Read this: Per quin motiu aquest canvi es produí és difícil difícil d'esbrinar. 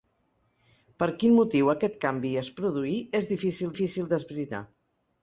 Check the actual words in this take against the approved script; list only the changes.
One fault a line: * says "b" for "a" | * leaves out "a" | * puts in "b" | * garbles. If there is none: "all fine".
all fine